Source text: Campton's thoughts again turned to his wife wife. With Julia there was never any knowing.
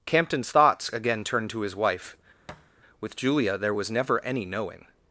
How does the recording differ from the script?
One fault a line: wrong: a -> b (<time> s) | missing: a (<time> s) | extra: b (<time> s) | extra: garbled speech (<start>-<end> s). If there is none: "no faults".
missing: wife (2.2 s)